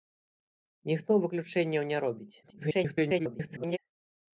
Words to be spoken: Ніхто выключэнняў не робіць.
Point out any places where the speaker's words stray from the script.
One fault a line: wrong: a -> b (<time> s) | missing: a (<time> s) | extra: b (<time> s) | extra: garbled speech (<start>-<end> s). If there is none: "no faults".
extra: garbled speech (2.4-3.8 s)